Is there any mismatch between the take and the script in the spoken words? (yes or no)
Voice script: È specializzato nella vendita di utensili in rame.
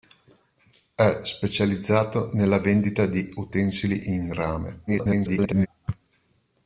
yes